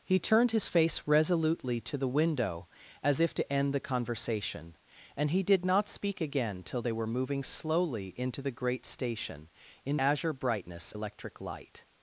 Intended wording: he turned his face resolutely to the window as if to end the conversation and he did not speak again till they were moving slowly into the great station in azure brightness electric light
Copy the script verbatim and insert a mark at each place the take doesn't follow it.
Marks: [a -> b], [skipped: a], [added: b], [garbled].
he turned his face resolutely to the window as if to end the conversation and he did not speak again till they were moving slowly into the great station in azure brightness electric light